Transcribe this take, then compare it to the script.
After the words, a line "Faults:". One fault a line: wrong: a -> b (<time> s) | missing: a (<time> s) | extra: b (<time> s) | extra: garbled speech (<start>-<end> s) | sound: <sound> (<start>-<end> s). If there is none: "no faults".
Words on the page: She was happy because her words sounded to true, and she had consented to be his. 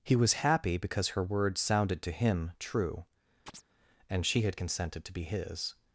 He was happy because her words sounded to him true, and she had consented to be his.
Faults:
wrong: She -> He (0.0 s)
extra: him (2.1 s)
sound: chirp (3.5-3.6 s)